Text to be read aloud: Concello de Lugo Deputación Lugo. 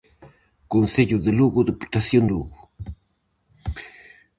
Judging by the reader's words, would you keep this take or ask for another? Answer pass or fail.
pass